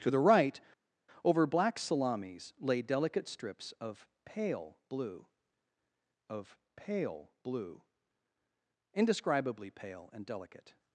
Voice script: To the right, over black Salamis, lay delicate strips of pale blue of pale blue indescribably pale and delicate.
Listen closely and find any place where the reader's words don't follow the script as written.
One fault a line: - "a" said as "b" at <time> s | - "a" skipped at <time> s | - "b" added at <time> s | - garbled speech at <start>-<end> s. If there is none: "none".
none